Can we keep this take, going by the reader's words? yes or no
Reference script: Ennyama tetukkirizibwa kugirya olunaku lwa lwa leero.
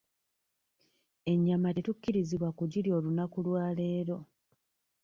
no